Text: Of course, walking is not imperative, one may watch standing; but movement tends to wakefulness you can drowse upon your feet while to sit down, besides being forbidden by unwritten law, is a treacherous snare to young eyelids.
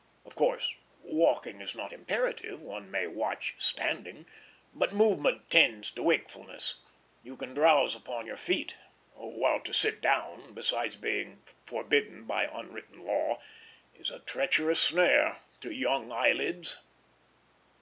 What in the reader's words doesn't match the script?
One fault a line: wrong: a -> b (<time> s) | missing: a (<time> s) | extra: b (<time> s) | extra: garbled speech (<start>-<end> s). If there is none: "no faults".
no faults